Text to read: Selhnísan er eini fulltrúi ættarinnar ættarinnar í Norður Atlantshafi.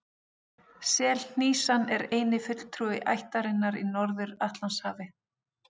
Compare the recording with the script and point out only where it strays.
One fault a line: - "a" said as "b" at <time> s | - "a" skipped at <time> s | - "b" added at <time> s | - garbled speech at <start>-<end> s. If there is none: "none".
- "ættarinnar" skipped at 3.8 s